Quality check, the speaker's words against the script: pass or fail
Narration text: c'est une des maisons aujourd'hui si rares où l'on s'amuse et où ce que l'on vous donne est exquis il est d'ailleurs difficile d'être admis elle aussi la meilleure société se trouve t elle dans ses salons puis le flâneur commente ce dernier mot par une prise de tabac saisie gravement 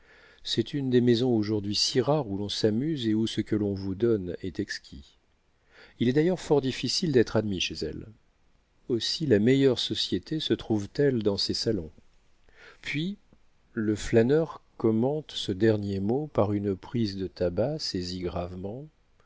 fail